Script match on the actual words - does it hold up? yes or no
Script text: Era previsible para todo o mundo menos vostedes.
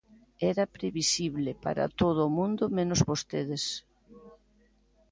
yes